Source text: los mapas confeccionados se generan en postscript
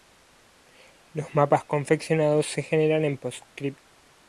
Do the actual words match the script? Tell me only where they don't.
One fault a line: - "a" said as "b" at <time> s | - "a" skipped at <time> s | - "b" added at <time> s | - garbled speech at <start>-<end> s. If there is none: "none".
none